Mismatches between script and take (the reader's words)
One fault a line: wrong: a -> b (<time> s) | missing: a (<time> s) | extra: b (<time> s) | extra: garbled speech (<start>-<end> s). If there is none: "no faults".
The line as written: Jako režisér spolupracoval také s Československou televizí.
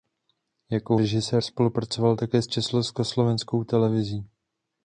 no faults